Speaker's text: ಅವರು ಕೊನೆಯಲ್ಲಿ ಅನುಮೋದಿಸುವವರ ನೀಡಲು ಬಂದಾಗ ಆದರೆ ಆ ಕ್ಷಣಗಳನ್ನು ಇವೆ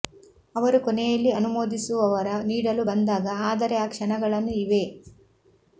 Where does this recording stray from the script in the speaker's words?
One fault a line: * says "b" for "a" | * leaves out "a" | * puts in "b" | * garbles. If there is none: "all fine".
all fine